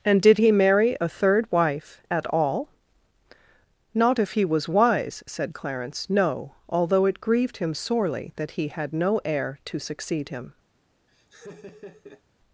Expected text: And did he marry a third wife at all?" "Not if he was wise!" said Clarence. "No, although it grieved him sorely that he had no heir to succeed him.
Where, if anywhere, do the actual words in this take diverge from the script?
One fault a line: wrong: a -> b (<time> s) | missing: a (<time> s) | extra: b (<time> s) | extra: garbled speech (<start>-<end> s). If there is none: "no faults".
no faults